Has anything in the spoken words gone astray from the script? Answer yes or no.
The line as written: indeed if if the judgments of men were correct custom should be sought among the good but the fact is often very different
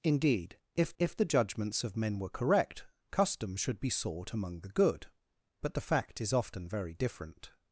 no